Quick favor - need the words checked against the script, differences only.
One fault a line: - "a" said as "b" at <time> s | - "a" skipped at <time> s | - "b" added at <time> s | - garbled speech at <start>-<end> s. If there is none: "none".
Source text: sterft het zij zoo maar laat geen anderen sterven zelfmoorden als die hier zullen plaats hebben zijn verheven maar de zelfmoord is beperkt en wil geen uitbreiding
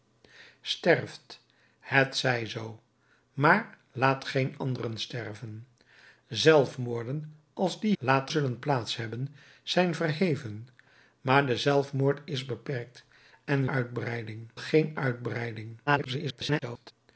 - "hier" said as "laat" at 8.0 s
- "wil" said as "uitbreiding" at 13.7 s
- garbled speech at 15.9-16.9 s